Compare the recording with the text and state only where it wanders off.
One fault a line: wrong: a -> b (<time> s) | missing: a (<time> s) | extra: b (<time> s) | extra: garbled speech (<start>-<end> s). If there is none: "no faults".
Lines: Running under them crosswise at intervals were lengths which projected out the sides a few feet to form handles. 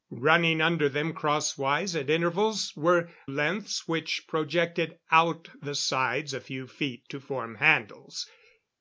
no faults